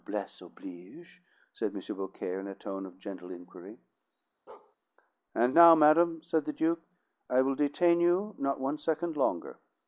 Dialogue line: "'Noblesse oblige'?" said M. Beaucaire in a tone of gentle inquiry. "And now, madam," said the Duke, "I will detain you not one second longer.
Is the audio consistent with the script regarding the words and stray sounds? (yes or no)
no